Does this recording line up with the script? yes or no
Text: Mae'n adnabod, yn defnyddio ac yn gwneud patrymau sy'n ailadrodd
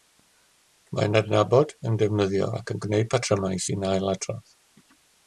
yes